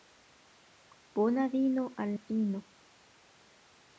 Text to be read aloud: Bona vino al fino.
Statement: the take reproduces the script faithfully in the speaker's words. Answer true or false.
true